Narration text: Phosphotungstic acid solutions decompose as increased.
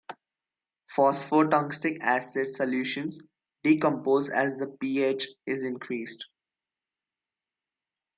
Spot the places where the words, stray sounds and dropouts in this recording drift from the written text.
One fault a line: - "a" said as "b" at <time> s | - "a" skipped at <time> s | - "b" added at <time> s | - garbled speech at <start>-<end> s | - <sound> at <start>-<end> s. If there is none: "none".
- "the pH is" added at 4.6 s